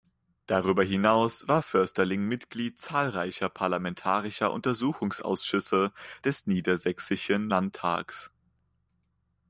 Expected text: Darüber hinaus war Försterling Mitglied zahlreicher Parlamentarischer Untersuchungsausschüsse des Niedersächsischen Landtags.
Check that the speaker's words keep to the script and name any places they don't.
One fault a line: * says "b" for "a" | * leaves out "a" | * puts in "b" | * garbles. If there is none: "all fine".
all fine